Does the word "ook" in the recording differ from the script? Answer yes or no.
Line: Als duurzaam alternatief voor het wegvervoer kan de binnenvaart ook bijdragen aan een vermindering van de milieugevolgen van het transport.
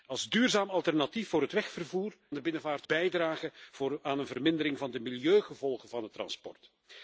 yes